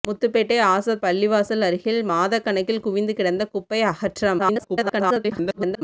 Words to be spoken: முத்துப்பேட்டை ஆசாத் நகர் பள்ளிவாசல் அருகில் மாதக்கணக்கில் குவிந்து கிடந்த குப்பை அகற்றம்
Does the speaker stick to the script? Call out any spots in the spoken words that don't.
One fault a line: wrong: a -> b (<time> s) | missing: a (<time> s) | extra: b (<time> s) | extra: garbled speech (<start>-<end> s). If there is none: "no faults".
missing: நகர் (1.0 s)
extra: garbled speech (4.4-5.8 s)